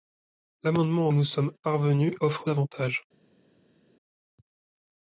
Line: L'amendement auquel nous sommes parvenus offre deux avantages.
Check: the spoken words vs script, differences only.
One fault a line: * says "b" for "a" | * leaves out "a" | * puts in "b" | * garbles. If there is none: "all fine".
* leaves out "auquel"
* leaves out "deux"